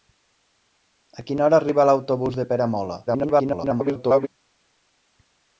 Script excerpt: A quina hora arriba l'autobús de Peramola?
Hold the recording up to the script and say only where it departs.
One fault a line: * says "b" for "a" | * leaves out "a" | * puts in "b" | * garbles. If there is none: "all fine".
* garbles